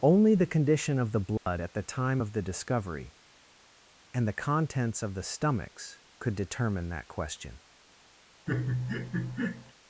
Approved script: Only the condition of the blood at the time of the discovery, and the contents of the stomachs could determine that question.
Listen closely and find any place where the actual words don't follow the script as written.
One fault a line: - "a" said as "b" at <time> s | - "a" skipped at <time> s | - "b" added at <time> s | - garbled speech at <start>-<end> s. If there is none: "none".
none